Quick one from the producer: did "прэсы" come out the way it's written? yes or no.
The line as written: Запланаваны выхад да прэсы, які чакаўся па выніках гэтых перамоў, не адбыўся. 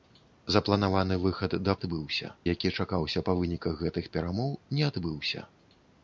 no